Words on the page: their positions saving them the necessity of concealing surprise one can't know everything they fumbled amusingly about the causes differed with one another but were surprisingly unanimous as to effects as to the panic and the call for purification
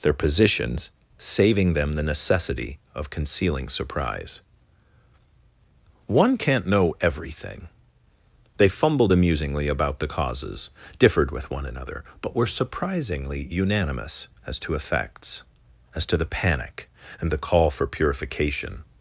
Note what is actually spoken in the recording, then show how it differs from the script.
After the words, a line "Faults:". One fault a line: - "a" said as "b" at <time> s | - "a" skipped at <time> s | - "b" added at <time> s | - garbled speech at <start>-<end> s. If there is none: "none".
their positions saving them the necessity of concealing surprise one can't know everything they fumbled amusingly about the causes differed with one another but were surprisingly unanimous as to effects as to the panic and the call for purification
Faults:
none